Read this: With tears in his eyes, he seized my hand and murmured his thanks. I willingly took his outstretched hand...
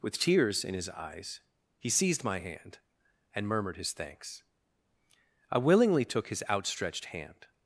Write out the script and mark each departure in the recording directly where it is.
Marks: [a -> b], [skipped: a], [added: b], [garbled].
With tears in his eyes, he seized my hand and murmured his thanks. I willingly took his outstretched hand...